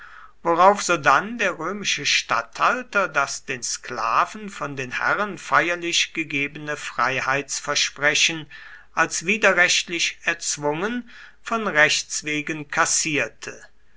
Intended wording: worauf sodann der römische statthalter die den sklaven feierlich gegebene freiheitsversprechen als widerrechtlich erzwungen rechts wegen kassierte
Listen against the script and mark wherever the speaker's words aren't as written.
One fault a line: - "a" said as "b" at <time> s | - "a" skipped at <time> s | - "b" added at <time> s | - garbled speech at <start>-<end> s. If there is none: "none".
- "die" said as "das" at 3.1 s
- "von den herren" added at 4.5 s
- "von" added at 11.4 s